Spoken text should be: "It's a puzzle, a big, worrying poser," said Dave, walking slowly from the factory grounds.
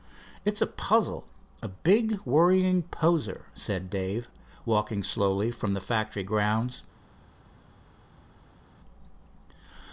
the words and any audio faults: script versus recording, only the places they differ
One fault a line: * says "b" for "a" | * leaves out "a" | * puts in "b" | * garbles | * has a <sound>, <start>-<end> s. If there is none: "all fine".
all fine